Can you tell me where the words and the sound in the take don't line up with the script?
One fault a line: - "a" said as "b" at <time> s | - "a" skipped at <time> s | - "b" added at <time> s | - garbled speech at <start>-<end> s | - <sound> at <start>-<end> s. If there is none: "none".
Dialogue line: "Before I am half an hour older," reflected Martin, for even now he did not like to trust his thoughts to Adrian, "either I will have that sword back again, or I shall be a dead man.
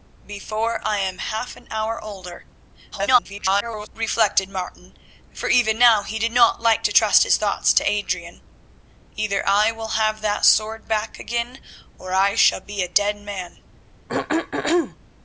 - garbled speech at 2.9-3.9 s
- throat clearing at 14.1-15.0 s